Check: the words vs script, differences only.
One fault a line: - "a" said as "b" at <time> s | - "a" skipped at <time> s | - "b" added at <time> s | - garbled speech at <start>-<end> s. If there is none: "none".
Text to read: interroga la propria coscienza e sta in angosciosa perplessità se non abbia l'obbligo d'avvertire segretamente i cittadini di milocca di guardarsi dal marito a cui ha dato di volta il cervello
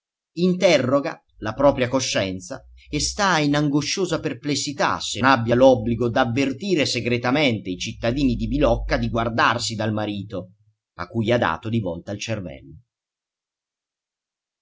- "non" skipped at 5.2 s